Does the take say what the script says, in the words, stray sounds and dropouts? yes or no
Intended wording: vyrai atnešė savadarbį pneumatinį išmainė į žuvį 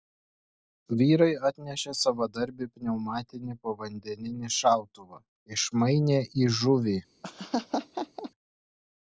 no